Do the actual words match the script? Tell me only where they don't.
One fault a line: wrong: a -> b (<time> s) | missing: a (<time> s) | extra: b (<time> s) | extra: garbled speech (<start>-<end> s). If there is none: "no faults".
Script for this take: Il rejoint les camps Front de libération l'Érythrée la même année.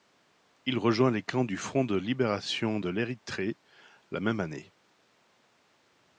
extra: du (1.4 s)
extra: de (2.8 s)